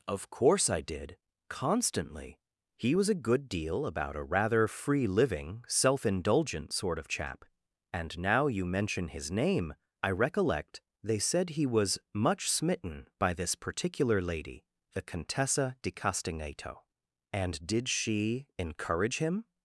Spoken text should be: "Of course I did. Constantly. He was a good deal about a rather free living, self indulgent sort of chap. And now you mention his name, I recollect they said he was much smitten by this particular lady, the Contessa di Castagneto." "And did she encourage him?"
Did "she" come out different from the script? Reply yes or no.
no